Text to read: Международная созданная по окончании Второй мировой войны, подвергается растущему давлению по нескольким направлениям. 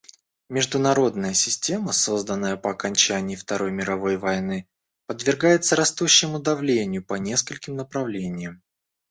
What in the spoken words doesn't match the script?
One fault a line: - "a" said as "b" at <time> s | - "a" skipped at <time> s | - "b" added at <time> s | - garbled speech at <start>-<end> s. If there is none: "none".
- "система" added at 1.4 s